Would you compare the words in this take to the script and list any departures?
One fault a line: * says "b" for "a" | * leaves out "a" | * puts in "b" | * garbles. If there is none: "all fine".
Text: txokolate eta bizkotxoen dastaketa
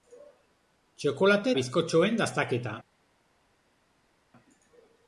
* leaves out "eta"